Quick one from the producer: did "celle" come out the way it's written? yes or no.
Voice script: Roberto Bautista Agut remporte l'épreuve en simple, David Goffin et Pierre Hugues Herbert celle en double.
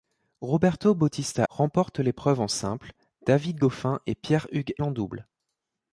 no